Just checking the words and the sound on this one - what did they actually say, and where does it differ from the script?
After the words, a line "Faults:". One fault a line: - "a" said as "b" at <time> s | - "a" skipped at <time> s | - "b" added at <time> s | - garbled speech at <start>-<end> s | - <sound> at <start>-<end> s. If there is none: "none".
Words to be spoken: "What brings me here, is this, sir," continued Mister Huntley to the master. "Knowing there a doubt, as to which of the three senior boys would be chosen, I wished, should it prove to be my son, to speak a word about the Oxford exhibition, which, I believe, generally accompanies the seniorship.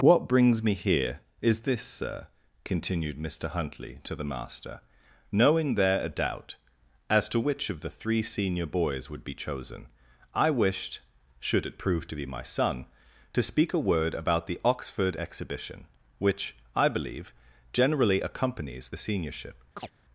"What brings me here, is this, sir," continued Mister Huntley to the master. "Knowing there a doubt, as to which of the three senior boys would be chosen, I wished, should it prove to be my son, to speak a word about the Oxford exhibition, which, I believe, generally accompanies the seniorship.
Faults:
- chirp at 19.8-19.9 s